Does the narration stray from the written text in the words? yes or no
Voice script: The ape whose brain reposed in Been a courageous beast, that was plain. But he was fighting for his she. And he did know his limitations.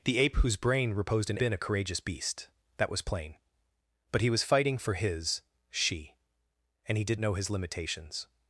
no